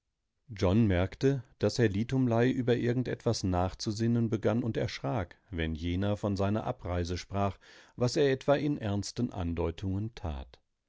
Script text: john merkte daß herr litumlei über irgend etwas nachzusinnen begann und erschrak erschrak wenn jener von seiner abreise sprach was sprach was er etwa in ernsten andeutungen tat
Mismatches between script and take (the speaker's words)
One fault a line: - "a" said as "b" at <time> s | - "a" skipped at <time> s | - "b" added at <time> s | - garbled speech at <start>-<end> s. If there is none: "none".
- "erschrak" skipped at 5.4 s
- "sprach was" skipped at 8.2 s